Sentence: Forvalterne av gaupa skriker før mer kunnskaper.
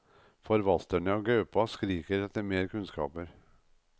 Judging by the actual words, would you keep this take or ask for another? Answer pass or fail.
fail